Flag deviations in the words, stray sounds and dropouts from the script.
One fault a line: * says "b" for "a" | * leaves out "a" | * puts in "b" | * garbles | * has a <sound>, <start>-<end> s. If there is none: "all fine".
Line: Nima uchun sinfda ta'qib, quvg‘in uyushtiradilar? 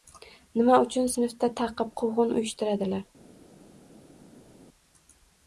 all fine